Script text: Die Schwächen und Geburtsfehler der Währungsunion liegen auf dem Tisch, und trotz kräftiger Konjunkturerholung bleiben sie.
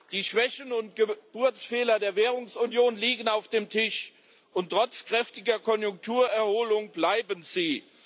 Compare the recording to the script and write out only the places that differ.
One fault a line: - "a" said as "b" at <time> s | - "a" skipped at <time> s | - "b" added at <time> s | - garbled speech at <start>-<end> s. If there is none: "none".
none